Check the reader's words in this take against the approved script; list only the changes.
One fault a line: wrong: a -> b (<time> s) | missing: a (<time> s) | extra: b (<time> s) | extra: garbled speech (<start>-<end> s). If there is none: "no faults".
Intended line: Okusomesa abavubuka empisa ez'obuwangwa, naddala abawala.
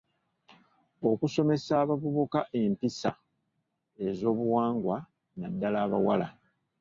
no faults